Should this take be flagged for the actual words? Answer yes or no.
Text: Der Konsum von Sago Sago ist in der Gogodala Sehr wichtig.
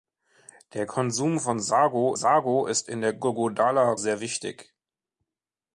no